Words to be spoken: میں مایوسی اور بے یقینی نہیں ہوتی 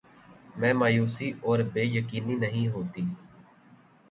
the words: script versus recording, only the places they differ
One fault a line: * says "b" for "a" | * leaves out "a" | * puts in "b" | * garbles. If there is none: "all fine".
all fine